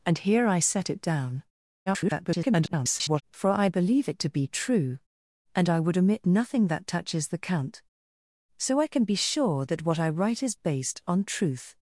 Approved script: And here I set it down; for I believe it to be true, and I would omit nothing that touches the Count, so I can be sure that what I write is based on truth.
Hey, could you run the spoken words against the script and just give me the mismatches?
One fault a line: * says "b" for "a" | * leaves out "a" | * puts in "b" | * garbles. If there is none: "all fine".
* garbles